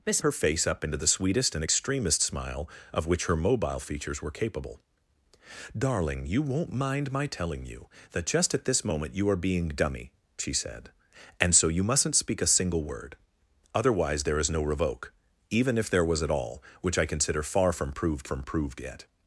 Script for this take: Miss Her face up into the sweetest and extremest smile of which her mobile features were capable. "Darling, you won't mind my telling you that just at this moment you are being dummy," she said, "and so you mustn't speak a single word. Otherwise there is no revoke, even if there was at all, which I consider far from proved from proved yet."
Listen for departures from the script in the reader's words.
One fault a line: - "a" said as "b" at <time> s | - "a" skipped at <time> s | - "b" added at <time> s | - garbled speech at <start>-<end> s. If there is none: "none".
none